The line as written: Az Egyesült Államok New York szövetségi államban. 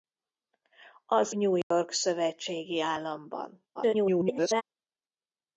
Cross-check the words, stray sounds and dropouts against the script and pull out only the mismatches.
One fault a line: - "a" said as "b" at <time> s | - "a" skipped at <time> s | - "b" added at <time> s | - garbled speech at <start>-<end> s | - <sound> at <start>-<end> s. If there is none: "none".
- "Egyesült Államok" skipped at 1.3 s
- dropout at 1.6-1.7 s
- garbled speech at 3.7-4.6 s